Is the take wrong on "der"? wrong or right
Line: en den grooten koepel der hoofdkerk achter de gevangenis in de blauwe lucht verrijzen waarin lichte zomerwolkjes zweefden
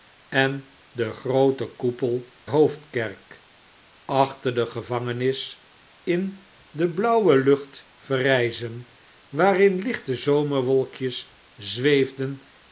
wrong